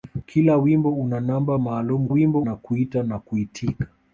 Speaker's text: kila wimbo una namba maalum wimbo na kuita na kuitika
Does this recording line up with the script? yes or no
yes